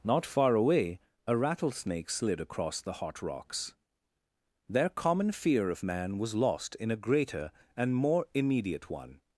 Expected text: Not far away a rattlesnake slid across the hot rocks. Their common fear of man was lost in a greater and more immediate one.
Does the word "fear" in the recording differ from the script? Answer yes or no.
no